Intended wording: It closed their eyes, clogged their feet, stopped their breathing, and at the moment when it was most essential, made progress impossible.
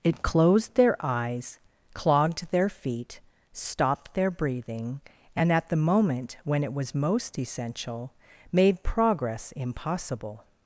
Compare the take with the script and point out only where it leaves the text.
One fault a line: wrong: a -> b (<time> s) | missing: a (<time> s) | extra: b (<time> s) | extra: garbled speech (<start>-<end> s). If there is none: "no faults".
no faults